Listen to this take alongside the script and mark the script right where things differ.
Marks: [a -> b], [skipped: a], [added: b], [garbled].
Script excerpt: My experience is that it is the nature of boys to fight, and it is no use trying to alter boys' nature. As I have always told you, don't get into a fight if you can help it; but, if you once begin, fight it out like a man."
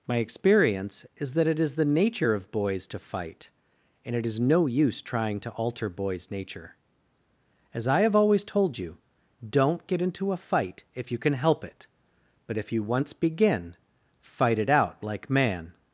My experience is that it is the nature of boys to fight, and it is no use trying to alter boys' nature. As I have always told you, don't get into a fight if you can help it; but, if you once begin, fight it out like [skipped: a] man."